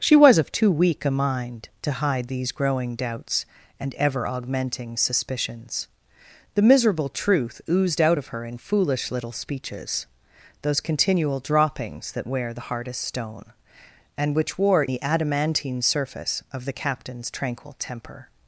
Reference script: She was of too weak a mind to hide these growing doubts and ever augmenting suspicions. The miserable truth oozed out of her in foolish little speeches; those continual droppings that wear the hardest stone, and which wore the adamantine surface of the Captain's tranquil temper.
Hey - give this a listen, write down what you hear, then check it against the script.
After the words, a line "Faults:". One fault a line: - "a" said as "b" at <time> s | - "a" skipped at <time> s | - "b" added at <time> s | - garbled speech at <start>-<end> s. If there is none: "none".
She was of too weak a mind to hide these growing doubts and ever augmenting suspicions. The miserable truth oozed out of her in foolish little speeches; those continual droppings that wear the hardest stone, and which wore the adamantine surface of the Captain's tranquil temper.
Faults:
none